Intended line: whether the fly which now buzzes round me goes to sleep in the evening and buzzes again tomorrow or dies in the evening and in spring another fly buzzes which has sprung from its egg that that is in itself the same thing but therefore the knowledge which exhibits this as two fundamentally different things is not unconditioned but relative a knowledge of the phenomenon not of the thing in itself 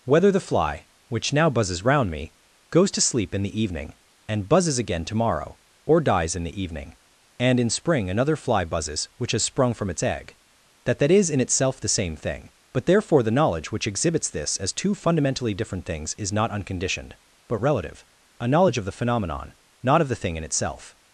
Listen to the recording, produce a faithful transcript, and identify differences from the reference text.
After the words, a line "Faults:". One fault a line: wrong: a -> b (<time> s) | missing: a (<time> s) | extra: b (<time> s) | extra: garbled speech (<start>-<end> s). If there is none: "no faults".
whether the fly which now buzzes round me goes to sleep in the evening and buzzes again tomorrow or dies in the evening and in spring another fly buzzes which has sprung from its egg that that is in itself the same thing but therefore the knowledge which exhibits this as two fundamentally different things is not unconditioned but relative a knowledge of the phenomenon not of the thing in itself
Faults:
no faults